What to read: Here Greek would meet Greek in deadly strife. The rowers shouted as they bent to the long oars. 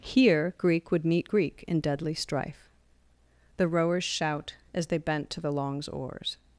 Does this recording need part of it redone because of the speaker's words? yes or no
yes